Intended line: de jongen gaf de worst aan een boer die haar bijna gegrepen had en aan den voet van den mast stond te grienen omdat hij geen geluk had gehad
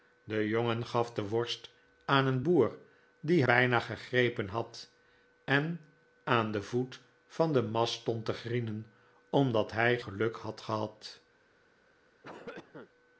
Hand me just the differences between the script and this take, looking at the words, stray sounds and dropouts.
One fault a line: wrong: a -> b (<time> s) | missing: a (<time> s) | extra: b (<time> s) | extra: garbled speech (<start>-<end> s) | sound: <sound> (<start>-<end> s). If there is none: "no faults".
missing: haar (3.4 s)
missing: geen (10.0 s)
sound: cough (12.2-12.9 s)